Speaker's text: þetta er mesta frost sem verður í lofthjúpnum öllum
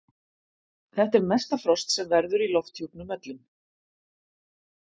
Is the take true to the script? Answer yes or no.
yes